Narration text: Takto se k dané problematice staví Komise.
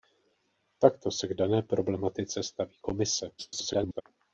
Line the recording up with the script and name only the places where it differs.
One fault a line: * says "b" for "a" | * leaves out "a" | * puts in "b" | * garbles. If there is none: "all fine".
* garbles